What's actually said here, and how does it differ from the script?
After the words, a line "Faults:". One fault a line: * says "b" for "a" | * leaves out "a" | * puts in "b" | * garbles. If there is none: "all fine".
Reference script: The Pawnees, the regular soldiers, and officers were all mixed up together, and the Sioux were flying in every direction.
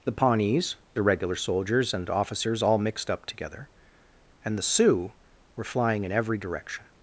The Pawnees, the regular soldiers, and officers all mixed up together, and the Sioux were flying in every direction.
Faults:
* leaves out "were"